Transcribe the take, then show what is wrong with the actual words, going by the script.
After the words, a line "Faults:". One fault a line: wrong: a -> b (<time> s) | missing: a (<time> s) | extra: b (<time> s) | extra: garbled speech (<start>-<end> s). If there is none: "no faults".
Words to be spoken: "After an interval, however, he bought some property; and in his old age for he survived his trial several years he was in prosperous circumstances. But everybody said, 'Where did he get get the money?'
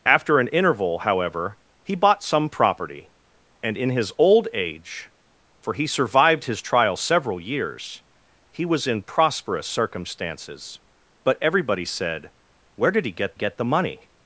"After an interval, however, he bought some property; and in his old age for he survived his trial several years he was in prosperous circumstances. But everybody said, 'Where did he get get the money?'
Faults:
no faults